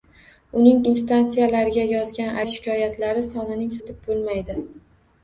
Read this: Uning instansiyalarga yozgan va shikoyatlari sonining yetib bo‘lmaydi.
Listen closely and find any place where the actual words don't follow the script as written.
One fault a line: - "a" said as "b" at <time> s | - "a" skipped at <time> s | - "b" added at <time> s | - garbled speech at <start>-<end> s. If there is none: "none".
none